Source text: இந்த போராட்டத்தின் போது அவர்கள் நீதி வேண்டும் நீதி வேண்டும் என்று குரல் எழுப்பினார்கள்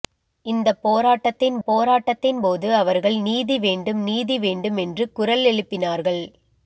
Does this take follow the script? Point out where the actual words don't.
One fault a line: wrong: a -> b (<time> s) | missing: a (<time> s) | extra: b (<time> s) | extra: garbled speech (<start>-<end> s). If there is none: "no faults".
extra: போராட்டத்தின் (1.7 s)